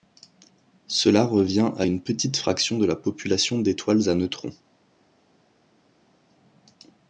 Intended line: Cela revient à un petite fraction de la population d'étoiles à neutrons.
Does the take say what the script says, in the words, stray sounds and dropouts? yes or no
no